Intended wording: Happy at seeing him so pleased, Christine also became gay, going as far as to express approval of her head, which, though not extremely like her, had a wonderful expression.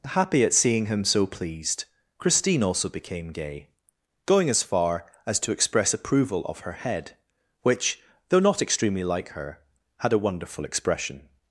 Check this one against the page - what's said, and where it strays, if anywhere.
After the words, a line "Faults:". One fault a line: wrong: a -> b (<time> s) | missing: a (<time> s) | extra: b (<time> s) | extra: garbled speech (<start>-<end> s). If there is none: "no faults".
Happy at seeing him so pleased, Christine also became gay, going as far as to express approval of her head, which, though not extremely like her, had a wonderful expression.
Faults:
no faults